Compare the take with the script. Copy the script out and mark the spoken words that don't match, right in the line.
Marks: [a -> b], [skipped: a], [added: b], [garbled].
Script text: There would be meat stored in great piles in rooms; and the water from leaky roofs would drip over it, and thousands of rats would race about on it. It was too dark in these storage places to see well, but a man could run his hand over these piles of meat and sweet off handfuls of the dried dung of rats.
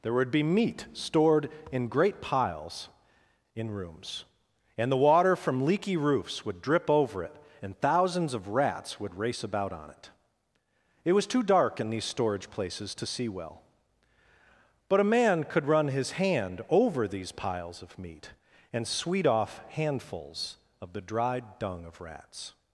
There would be meat stored in great piles in rooms; and the water from leaky roofs would drip over it, and thousands of rats would race about on it. It was too dark in these storage places to see well, but a man could run his hand over these piles of meat and sweet off handfuls of the dried dung of rats.